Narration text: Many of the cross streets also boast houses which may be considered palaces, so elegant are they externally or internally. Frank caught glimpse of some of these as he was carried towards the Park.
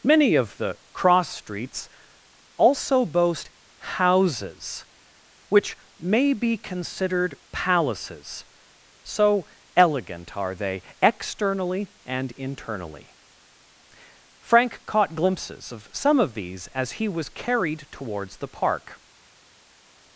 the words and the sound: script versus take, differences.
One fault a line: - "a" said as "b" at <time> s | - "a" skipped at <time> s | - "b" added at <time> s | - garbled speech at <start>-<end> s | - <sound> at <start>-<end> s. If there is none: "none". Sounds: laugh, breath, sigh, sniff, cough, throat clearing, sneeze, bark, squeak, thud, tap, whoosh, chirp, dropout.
- "or" said as "and" at 12.1 s
- "glimpse" said as "glimpses" at 15.2 s